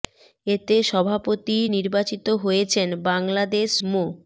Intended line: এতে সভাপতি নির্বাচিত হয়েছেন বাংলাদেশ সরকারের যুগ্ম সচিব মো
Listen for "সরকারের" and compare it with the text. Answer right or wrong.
wrong